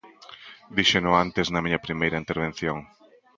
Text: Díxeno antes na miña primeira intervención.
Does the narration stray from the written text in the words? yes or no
no